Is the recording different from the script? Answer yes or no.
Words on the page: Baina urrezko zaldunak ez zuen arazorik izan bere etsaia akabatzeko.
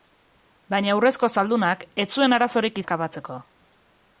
yes